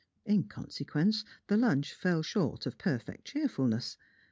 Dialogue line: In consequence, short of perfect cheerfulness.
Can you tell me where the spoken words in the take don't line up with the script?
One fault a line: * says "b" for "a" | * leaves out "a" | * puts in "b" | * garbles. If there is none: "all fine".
* puts in "the lunch fell"